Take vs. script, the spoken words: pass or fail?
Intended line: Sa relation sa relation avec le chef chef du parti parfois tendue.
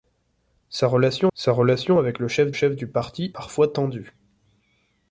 pass